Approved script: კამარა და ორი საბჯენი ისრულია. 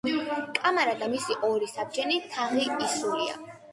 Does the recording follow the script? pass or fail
fail